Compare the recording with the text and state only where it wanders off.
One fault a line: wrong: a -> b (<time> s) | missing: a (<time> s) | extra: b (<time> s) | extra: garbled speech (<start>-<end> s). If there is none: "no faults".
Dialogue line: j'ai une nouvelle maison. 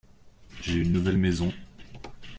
no faults